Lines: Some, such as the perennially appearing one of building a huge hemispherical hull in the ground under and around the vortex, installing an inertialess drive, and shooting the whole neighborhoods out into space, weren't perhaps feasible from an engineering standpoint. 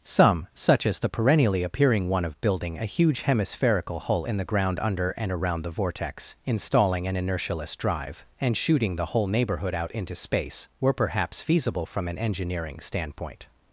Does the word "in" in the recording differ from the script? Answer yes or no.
no